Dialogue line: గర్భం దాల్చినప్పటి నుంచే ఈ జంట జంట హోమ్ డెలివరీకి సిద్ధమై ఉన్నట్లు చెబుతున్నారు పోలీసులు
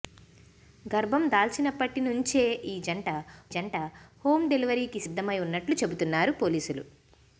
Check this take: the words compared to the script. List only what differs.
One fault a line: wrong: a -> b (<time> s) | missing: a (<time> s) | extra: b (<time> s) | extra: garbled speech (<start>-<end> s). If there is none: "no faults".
no faults